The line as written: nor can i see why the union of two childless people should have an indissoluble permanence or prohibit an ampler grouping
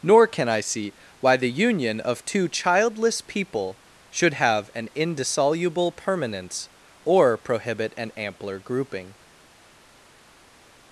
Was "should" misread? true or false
false